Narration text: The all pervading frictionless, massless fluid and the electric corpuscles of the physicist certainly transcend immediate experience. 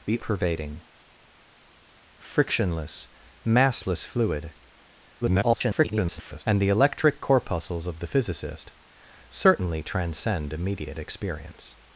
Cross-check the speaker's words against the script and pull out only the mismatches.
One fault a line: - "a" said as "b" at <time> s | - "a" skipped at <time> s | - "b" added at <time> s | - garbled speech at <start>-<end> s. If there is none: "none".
- "all" skipped at 0.2 s
- garbled speech at 5.2-6.4 s